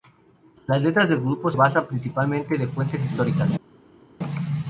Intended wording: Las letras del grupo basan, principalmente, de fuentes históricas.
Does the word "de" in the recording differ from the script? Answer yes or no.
no